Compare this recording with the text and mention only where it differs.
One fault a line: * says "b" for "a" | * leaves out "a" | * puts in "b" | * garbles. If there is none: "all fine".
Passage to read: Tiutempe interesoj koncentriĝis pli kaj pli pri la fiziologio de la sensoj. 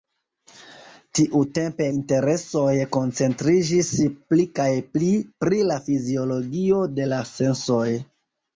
all fine